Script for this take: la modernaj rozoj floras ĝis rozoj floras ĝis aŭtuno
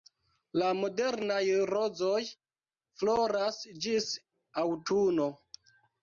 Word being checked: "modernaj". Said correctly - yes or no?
yes